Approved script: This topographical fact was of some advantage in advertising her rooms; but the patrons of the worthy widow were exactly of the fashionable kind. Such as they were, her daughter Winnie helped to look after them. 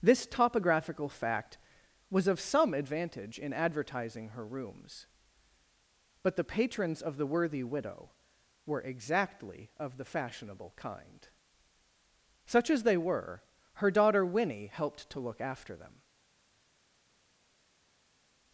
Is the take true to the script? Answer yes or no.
yes